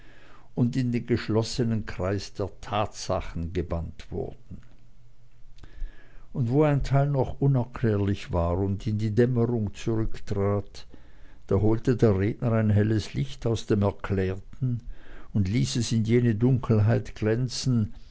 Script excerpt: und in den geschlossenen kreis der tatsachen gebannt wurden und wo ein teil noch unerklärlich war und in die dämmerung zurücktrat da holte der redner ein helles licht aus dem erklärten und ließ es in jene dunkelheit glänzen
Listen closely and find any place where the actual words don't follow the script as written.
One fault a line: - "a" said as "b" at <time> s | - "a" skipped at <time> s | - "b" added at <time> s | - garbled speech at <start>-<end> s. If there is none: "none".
none